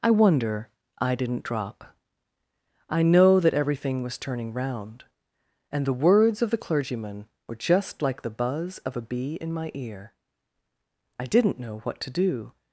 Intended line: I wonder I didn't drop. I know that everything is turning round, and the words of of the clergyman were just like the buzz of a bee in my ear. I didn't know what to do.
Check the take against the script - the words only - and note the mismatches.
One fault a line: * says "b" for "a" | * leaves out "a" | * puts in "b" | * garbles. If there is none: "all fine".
* says "was" for "is"
* leaves out "of"